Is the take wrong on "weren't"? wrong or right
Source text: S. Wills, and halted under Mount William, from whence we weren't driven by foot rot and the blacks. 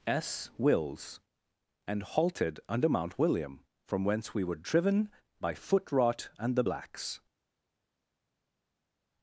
wrong